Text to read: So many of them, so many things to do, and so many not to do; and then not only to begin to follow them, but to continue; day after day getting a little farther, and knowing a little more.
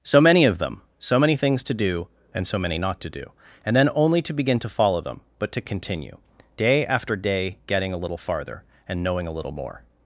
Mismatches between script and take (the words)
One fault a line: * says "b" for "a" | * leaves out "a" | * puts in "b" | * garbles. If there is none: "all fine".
* leaves out "not"